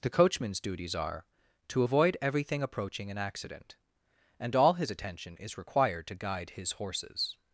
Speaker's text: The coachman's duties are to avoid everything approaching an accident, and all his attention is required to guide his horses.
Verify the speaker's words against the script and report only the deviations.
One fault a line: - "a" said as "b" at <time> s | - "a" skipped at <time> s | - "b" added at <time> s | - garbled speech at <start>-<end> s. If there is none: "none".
none